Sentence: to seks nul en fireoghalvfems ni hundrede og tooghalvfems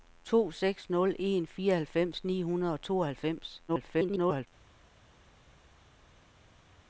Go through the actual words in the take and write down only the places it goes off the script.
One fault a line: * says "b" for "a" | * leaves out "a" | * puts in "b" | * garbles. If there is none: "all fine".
* garbles